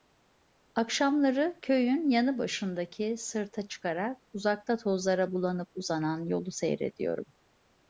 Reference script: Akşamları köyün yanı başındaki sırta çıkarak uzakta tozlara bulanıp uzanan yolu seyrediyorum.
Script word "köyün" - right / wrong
right